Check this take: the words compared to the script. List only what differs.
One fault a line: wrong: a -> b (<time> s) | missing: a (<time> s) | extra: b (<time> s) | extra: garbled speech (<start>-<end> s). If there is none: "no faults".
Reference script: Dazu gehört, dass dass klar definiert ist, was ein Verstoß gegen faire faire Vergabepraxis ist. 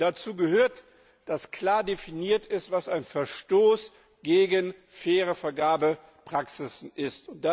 missing: dass (1.5 s)
missing: faire (5.4 s)